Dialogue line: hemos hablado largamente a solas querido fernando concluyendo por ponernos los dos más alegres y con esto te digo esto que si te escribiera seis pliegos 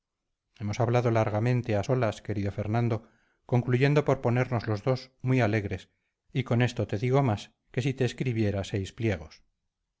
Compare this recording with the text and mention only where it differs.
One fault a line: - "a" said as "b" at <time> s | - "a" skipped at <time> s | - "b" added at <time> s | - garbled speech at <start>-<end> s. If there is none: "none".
- "más" said as "muy" at 5.2 s
- "esto" said as "más" at 7.2 s